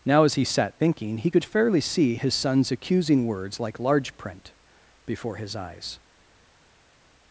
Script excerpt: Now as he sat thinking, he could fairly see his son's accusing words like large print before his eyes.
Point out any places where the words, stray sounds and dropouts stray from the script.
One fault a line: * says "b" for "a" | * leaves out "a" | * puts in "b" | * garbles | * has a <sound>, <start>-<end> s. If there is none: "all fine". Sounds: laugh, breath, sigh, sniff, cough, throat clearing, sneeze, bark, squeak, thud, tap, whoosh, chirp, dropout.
all fine